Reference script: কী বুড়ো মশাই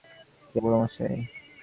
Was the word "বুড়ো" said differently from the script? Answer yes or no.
no